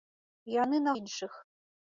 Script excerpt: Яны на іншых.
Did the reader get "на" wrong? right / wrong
right